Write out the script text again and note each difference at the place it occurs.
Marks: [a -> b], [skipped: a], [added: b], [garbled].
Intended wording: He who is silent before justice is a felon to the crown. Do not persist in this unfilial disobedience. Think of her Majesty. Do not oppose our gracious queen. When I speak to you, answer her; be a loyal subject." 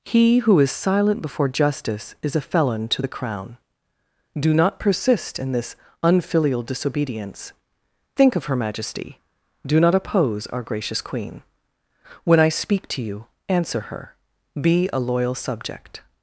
He who is silent before justice is a felon to the crown. Do not persist in this unfilial disobedience. Think of her Majesty. Do not oppose our gracious queen. When I speak to you, answer her; be a loyal subject."